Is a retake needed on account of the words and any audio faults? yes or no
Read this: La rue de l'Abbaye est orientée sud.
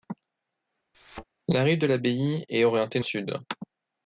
yes